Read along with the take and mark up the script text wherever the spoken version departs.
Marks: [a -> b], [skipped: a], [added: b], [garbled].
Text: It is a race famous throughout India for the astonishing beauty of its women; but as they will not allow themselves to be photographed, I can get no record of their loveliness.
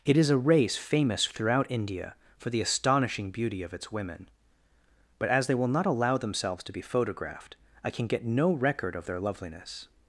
It is a race famous throughout India for the astonishing beauty of its women; but as they will not allow themselves to be photographed, I can get no record of their loveliness.